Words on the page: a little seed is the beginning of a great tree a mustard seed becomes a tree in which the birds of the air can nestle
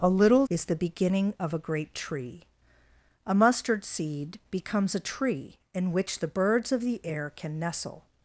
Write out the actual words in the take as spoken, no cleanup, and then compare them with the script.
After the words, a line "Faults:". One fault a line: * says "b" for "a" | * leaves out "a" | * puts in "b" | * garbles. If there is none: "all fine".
a little is the beginning of a great tree a mustard seed becomes a tree in which the birds of the air can nestle
Faults:
* leaves out "seed"